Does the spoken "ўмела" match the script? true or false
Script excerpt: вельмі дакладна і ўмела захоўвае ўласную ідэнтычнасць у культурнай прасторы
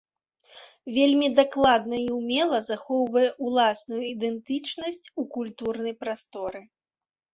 true